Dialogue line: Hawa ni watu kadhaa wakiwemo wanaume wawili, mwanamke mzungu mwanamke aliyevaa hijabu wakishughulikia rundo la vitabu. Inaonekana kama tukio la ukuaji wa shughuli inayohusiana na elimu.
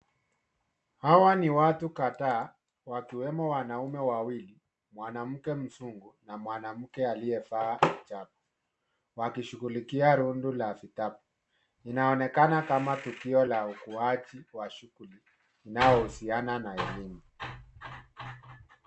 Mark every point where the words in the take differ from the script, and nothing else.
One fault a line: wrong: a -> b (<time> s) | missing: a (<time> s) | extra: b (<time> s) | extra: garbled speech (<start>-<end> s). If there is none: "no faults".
extra: na (6.2 s)